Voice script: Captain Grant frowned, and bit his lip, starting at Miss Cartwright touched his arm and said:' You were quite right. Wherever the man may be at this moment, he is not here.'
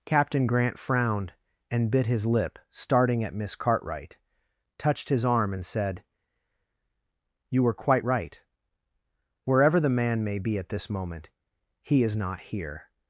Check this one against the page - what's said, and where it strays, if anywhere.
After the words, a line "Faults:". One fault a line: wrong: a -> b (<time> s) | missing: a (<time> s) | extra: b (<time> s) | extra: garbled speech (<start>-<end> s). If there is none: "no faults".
Captain Grant frowned, and bit his lip, starting at Miss Cartwright touched his arm and said:' You were quite right. Wherever the man may be at this moment, he is not here.'
Faults:
no faults